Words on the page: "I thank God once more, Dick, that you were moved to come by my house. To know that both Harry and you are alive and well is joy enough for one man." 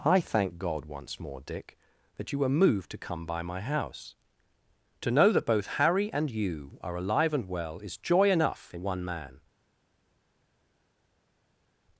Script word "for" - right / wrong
wrong